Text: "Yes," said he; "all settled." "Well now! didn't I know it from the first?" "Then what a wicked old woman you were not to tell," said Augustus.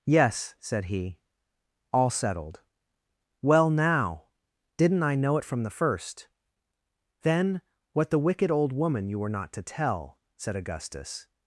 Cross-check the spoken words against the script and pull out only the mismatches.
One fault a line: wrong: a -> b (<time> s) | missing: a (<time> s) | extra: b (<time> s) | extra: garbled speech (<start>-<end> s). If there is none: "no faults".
wrong: a -> the (8.1 s)